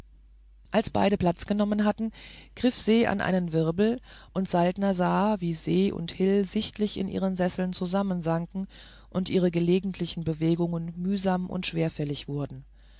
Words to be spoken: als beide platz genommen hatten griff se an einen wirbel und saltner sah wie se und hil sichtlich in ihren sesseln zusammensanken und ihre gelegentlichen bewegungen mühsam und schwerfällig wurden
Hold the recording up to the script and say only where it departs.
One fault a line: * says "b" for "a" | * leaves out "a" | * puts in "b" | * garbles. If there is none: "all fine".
all fine